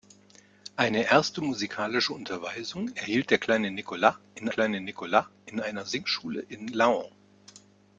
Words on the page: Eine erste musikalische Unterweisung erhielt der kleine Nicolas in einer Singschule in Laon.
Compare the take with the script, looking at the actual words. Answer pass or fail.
fail